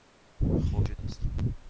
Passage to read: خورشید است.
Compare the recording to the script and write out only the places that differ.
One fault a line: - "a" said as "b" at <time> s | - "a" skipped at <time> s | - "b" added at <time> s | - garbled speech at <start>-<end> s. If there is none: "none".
none